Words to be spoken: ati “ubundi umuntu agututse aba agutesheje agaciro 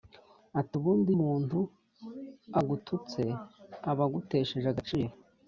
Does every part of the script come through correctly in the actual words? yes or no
yes